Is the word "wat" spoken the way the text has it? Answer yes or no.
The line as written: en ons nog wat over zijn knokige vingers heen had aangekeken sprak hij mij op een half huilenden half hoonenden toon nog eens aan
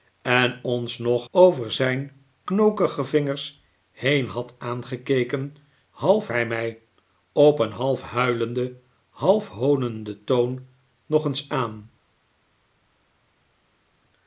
no